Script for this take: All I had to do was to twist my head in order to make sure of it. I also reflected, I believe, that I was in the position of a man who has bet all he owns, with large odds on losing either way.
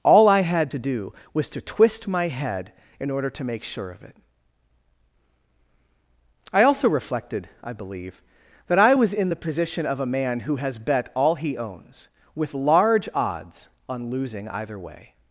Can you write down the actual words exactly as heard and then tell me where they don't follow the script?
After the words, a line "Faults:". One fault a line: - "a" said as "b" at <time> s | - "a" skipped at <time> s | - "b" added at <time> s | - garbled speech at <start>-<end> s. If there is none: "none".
All I had to do was to twist my head in order to make sure of it. I also reflected, I believe, that I was in the position of a man who has bet all he owns, with large odds on losing either way.
Faults:
none